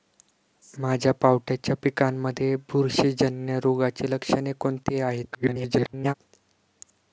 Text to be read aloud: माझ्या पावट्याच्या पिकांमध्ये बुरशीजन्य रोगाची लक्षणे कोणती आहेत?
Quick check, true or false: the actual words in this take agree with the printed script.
false